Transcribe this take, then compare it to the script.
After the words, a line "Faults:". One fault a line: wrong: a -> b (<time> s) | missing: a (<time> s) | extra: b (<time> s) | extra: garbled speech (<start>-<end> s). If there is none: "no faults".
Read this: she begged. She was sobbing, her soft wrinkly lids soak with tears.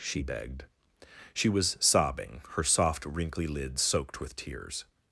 she begged. She was sobbing, her soft wrinkly lids soaked with tears.
Faults:
wrong: soak -> soaked (3.8 s)